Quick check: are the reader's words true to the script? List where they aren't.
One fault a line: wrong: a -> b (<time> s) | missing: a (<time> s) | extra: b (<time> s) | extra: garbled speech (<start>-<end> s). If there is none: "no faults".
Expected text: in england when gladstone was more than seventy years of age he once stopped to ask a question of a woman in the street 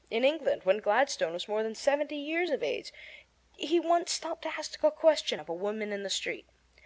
no faults